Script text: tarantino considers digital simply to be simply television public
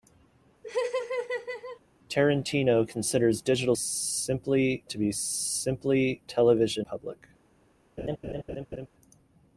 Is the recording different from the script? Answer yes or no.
no